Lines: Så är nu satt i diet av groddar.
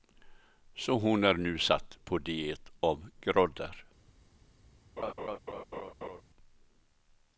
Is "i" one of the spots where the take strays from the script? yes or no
yes